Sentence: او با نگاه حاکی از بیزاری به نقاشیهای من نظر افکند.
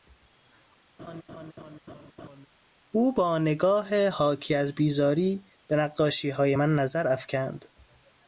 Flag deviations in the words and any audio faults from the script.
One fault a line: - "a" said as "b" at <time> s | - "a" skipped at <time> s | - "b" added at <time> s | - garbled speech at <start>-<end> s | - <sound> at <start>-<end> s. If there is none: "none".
- laugh at 1.0-2.5 s